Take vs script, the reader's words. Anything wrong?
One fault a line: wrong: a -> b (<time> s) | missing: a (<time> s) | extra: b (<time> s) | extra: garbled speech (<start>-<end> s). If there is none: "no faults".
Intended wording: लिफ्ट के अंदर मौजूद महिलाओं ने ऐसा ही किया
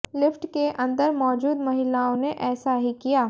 no faults